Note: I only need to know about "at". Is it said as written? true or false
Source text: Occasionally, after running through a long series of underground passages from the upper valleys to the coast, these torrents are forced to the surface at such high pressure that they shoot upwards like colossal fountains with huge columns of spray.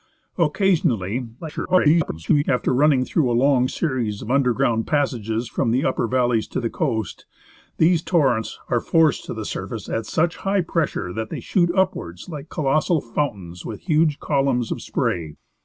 true